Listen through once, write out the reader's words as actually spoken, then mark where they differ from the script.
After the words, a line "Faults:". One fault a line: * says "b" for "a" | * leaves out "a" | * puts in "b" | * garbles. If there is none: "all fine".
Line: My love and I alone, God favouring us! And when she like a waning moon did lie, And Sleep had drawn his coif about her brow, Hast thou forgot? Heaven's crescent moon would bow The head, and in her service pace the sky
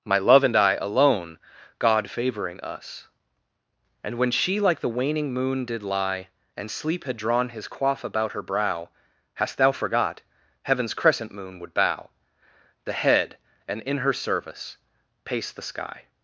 My love and I alone, God favouring us! And when she like the waning moon did lie, And Sleep had drawn his coif about her brow, Hast thou forgot? Heaven's crescent moon would bow The head, and in her service pace the sky
Faults:
* says "the" for "a"